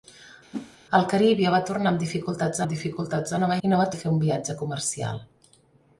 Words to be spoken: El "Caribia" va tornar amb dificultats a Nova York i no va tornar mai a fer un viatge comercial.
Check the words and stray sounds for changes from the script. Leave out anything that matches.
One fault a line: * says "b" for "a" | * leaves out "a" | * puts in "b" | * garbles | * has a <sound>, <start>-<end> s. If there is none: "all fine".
* has a whoosh, 0.5-0.8 s
* puts in "amb dificultats"
* leaves out "York"
* leaves out "tornar mai"